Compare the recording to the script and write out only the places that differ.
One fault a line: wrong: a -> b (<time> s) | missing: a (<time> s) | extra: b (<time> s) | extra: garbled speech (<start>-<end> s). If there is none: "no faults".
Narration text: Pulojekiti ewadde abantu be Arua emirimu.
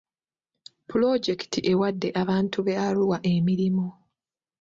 no faults